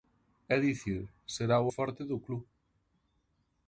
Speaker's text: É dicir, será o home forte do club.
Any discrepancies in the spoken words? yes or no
yes